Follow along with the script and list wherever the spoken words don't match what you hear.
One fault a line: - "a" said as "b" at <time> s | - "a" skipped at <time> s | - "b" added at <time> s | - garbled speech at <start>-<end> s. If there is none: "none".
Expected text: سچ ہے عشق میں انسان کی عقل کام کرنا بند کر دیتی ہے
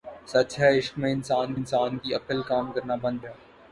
- "انسان" added at 1.5 s
- "کر دیتی" skipped at 3.2 s